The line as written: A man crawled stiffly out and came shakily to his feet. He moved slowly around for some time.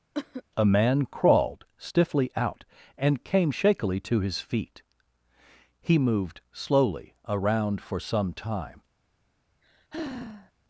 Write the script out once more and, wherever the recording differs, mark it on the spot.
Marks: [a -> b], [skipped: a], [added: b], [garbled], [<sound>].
[cough] A man crawled stiffly out and came shakily to his feet. He moved slowly around for some time. [sigh]